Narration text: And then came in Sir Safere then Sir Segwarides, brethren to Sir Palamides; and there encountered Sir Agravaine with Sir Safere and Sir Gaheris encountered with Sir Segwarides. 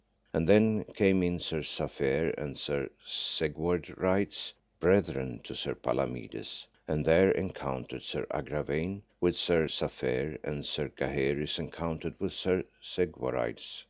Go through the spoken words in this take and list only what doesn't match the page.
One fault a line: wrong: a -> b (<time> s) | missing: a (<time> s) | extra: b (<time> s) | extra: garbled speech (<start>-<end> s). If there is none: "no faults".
wrong: then -> and (2.4 s)